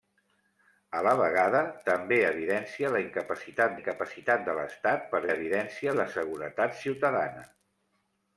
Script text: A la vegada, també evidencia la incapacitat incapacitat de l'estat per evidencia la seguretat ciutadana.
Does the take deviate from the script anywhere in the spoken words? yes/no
no